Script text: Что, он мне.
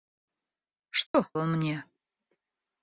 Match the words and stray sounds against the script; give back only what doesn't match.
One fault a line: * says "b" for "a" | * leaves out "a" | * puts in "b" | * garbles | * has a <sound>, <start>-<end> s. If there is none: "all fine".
* has a dropout, 1.1-1.1 s